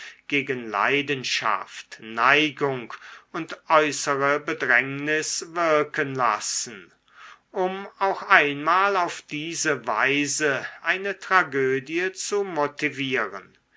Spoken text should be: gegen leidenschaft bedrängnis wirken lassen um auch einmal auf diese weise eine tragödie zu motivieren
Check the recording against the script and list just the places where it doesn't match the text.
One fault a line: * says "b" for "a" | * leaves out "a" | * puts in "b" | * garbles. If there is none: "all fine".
* puts in "neigung und äußere"